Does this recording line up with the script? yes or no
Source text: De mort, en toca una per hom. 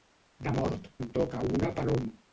yes